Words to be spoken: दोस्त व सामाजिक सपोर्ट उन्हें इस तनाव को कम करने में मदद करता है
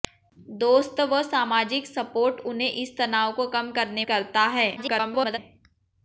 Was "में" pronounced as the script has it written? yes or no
no